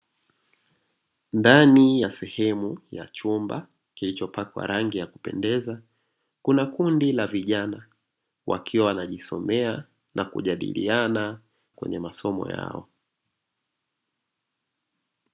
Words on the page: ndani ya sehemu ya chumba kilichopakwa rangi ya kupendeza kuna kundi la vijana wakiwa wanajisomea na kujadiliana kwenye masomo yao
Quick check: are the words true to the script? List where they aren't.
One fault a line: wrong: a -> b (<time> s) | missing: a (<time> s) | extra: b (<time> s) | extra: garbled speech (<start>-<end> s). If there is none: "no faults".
no faults